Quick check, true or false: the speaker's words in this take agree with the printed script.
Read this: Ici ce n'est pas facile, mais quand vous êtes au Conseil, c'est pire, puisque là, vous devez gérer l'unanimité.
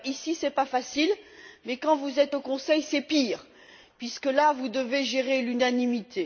true